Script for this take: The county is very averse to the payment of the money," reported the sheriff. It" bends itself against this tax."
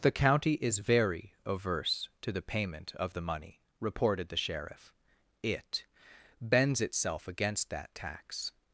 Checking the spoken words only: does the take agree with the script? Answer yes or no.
no